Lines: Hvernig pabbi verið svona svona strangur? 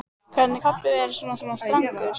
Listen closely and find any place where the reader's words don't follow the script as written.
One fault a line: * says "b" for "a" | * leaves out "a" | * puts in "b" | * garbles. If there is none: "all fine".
all fine